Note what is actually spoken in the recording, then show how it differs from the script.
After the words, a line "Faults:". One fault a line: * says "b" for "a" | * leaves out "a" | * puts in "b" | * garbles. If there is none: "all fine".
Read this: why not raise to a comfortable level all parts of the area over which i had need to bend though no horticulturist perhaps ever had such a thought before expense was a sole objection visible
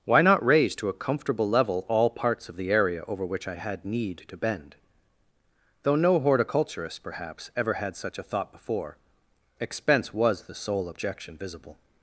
why not raise to a comfortable level all parts of the area over which i had need to bend though no horticulturist perhaps ever had such a thought before expense was the sole objection visible
Faults:
* says "the" for "a"